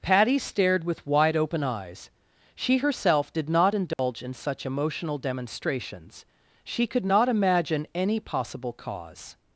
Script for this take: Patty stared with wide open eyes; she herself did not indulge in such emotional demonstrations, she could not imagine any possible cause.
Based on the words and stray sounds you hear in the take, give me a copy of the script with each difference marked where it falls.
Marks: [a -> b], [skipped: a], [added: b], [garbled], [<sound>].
Patty stared with wide open eyes; she herself did not indulge [dropout] in such emotional demonstrations, she could not imagine any possible cause.